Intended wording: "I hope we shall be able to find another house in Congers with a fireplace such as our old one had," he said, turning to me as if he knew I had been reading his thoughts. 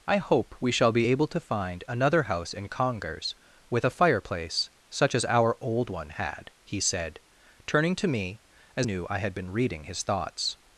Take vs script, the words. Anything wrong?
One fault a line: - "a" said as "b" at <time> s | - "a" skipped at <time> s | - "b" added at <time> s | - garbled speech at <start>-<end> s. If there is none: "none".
- "if he" skipped at 8.9 s